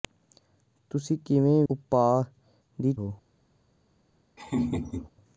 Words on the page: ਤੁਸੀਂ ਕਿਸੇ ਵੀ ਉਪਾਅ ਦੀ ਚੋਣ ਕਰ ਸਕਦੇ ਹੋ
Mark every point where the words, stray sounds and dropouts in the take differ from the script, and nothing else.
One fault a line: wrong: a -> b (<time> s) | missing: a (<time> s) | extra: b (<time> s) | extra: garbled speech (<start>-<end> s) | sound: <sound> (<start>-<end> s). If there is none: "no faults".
missing: ਵੀ (1.6 s)
missing: ਚੋਣ ਕਰ ਸਕਦੇ (2.9 s)
sound: laugh (4.4-5.1 s)